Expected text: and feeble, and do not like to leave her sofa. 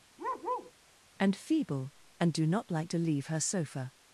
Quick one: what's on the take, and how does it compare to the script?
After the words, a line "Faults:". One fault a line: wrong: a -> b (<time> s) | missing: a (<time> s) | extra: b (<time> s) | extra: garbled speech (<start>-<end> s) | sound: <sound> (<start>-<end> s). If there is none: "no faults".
and feeble, and do not like to leave her sofa.
Faults:
sound: bark (0.2-0.7 s)